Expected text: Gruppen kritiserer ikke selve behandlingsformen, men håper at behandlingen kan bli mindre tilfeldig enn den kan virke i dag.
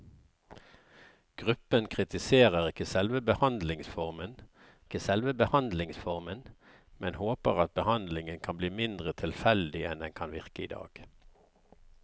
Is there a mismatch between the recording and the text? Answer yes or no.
yes